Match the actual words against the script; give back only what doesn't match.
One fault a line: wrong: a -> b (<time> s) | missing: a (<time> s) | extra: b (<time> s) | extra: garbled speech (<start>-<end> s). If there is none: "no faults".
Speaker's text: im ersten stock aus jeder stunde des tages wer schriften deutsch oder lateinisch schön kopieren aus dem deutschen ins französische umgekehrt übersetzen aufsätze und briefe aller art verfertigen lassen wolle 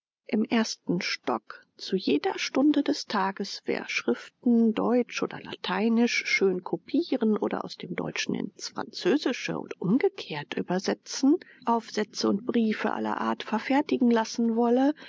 wrong: aus -> zu (1.7 s)
extra: oder (7.4 s)
extra: und (9.6 s)